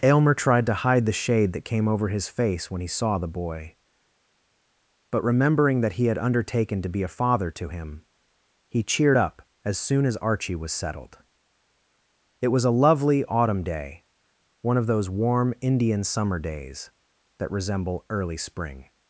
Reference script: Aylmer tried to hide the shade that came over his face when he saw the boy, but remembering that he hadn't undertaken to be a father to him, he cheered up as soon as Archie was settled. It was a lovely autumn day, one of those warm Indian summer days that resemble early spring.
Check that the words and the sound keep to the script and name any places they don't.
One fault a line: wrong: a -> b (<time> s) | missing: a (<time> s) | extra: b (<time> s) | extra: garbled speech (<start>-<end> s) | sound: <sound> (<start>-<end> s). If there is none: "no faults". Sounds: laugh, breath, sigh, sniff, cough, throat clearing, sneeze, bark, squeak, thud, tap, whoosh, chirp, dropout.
wrong: hadn't -> had (6.1 s)